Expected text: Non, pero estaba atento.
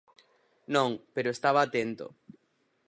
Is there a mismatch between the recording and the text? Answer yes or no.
no